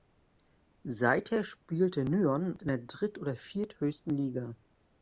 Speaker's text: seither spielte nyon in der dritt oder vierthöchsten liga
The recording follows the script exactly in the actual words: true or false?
true